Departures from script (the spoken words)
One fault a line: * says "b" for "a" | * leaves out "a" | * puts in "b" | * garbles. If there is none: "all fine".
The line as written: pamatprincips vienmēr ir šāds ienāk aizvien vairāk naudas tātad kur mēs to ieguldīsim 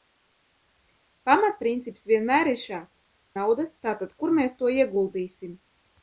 * leaves out "ienāk aizvien vairāk"